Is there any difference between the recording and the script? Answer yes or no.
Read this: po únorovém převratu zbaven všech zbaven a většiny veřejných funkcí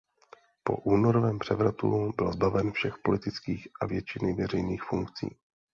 yes